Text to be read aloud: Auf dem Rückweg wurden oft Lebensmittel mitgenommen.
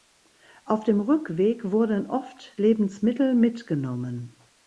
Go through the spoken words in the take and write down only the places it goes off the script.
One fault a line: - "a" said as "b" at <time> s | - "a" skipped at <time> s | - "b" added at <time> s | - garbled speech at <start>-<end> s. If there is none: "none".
none